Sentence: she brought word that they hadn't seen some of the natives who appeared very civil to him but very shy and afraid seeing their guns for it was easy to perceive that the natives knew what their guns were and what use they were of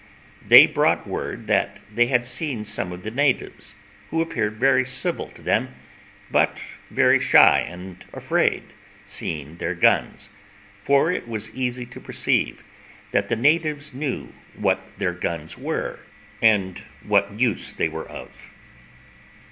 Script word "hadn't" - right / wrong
wrong